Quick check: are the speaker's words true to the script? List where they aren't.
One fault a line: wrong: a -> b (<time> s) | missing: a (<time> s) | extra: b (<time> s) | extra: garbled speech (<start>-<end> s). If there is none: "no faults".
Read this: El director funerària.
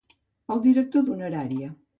no faults